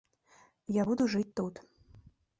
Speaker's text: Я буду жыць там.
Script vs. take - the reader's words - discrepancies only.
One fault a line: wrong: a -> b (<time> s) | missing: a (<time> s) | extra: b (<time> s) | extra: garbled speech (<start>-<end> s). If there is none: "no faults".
wrong: там -> тут (1.4 s)